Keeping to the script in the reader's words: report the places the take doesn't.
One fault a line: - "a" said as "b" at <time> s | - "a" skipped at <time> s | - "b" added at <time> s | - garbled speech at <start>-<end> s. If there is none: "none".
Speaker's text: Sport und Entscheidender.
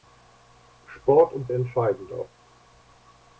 none